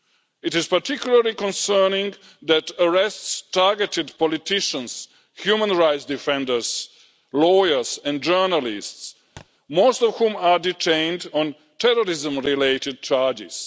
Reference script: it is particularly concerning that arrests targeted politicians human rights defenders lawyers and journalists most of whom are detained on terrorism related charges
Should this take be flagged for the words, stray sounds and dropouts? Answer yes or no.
yes